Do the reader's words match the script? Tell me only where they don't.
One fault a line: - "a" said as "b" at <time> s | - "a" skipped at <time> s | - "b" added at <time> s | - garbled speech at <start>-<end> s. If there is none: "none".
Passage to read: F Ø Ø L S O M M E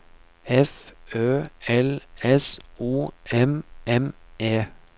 - "Ø" skipped at 1.4 s